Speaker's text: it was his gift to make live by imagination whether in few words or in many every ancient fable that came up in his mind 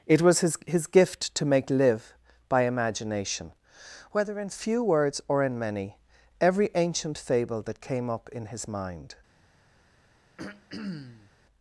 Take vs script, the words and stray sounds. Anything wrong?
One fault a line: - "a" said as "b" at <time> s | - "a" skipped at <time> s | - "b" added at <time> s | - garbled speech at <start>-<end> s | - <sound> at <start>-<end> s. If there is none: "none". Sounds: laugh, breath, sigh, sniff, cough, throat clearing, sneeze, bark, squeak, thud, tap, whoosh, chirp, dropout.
- "his" added at 0.7 s
- throat clearing at 10.4-11.3 s